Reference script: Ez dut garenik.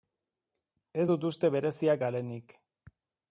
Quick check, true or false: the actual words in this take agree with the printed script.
false